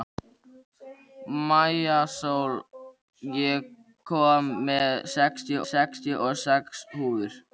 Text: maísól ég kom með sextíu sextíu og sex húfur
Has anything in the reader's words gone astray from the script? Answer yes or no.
no